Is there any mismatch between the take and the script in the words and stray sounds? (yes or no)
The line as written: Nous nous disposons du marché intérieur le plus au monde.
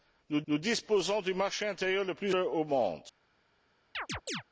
yes